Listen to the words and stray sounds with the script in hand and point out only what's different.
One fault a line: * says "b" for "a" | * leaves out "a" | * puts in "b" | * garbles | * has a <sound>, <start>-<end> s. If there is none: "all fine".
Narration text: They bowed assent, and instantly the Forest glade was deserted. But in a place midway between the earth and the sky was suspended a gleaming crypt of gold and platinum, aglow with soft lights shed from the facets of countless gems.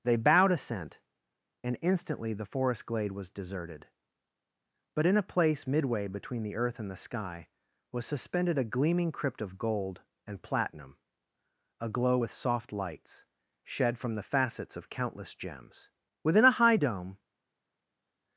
* puts in "Within a high dome"